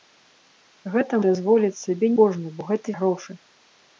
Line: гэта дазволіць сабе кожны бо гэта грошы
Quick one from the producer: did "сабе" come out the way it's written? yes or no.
yes